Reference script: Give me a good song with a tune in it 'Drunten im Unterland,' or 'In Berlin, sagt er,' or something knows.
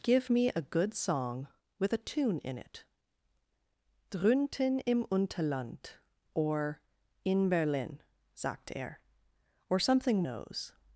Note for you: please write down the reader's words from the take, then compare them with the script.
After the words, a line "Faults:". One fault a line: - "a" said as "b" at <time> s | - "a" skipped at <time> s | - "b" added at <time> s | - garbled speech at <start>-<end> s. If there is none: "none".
Give me a good song with a tune in it 'Drunten im Unterland,' or 'In Berlin, sagt er,' or something knows.
Faults:
none